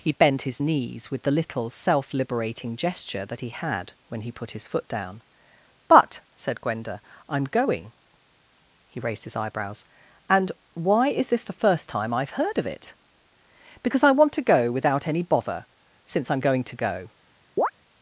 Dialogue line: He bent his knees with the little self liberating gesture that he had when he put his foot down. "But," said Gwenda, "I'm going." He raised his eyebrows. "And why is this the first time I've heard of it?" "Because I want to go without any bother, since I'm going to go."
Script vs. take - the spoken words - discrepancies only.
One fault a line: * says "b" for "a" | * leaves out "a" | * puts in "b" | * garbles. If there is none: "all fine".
all fine